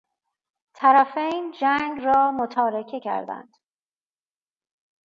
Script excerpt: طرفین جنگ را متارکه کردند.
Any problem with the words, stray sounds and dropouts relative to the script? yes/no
no